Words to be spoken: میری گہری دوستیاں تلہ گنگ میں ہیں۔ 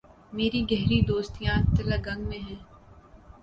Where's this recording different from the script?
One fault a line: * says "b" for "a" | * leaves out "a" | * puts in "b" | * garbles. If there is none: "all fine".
all fine